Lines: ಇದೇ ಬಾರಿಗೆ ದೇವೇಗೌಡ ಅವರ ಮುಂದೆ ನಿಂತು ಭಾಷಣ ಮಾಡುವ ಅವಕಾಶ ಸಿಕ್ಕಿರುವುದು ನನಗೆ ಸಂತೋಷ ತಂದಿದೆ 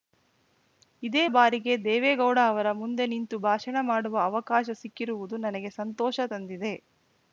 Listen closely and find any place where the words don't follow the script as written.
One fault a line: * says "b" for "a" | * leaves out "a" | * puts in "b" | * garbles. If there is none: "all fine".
all fine